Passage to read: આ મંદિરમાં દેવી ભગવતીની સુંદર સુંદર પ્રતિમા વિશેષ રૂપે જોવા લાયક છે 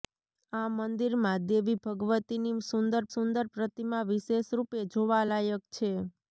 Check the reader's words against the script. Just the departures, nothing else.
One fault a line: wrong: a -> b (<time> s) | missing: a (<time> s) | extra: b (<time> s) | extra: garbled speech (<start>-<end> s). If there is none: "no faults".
no faults